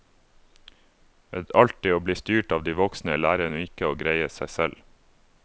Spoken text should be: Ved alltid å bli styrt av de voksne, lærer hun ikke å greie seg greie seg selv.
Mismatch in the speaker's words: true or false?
true